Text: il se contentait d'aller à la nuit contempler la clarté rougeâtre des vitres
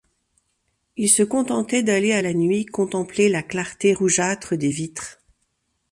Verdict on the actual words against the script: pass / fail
pass